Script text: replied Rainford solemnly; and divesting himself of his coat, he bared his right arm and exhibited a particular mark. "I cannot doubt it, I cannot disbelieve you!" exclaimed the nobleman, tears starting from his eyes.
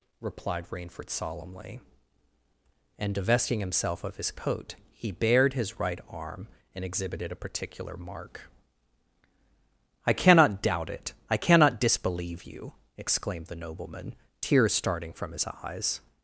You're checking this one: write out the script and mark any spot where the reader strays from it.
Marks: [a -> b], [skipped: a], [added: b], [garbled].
replied Rainford solemnly; and divesting himself of his coat, he bared his right arm and exhibited a particular mark. "I cannot doubt it, I cannot disbelieve you!" exclaimed the nobleman, tears starting from his eyes.